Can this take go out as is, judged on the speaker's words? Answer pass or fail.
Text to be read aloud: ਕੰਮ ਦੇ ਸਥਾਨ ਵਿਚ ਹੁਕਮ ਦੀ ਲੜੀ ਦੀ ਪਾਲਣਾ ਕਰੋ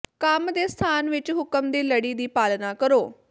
pass